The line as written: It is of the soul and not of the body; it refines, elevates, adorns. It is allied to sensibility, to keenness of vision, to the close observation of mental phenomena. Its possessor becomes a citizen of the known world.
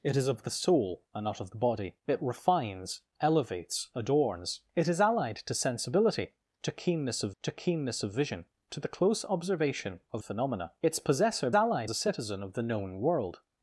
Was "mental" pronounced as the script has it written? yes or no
no